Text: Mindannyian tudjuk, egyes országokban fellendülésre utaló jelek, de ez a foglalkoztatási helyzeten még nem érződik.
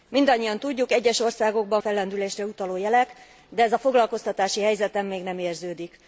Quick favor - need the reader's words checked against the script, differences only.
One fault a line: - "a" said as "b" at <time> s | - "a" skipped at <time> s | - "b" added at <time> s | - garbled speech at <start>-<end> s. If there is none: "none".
none